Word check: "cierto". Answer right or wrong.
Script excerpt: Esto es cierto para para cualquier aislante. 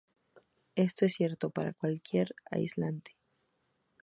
right